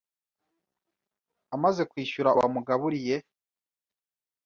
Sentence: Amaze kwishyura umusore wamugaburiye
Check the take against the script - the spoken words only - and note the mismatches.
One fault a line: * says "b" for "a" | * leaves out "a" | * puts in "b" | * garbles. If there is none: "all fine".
* leaves out "umusore"